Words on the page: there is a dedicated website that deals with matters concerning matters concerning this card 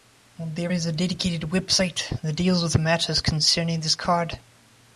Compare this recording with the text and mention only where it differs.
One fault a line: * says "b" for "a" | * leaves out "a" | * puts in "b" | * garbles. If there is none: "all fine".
* leaves out "matters concerning"